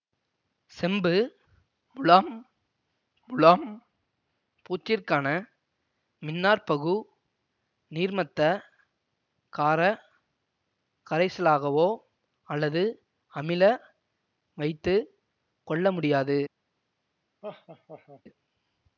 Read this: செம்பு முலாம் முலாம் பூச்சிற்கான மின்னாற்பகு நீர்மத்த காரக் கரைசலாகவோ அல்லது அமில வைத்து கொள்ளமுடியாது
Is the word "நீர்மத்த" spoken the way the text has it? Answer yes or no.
yes